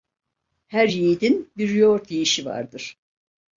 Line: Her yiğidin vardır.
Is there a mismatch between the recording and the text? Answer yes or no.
yes